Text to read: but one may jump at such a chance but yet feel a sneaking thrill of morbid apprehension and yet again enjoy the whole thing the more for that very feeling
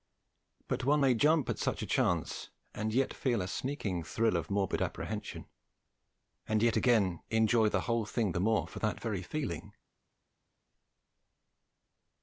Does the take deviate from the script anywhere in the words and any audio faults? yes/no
yes